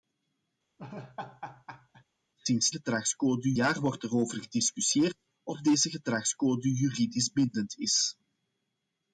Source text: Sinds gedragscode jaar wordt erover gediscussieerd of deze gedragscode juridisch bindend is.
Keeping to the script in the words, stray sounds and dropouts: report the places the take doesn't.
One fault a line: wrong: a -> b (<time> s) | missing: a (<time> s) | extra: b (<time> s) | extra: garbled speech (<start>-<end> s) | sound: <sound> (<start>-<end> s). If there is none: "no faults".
sound: laugh (0.8-2.0 s)